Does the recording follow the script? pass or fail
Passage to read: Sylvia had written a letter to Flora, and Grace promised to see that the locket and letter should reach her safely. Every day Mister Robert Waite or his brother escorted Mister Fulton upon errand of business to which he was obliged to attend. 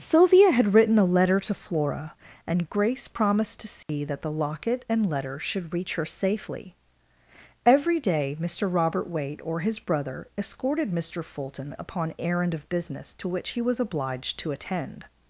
pass